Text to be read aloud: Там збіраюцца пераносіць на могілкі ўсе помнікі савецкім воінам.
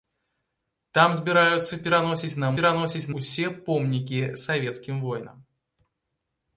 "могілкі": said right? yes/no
no